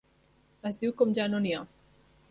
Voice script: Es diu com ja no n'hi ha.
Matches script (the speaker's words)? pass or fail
pass